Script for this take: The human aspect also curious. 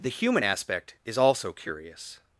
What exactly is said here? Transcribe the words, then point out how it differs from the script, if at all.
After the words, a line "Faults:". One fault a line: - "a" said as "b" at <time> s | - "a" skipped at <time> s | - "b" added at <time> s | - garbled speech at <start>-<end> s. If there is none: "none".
The human aspect is also curious.
Faults:
- "is" added at 1.1 s